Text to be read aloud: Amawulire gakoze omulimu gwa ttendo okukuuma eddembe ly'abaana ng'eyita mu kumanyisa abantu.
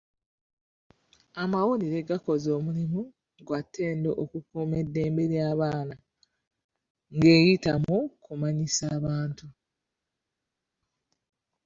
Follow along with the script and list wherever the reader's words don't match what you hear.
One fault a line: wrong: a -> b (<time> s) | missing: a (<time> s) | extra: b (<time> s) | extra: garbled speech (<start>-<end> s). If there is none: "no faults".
no faults